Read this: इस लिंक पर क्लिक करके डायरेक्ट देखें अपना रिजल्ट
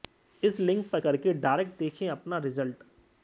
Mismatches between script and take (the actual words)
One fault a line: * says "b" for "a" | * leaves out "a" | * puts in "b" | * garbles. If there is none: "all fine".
* leaves out "क्लिक"